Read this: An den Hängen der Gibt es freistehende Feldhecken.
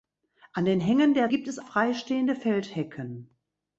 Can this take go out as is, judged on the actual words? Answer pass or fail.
pass